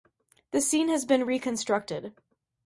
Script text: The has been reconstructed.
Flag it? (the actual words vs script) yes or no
yes